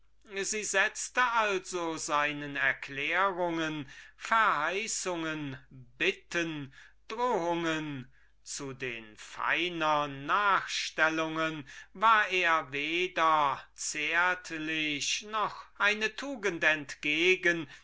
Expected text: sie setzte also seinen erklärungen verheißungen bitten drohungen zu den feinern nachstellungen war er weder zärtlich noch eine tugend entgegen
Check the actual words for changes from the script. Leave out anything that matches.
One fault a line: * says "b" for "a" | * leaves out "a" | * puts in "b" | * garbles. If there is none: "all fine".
all fine